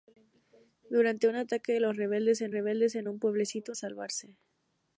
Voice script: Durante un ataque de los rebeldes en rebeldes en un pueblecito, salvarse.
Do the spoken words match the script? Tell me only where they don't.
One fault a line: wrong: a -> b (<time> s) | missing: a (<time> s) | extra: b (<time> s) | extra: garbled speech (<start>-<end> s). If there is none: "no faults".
no faults